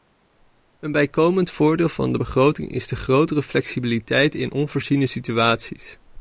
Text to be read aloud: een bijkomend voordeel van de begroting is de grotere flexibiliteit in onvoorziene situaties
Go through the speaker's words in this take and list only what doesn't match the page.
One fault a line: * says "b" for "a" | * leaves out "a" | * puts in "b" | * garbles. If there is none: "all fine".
all fine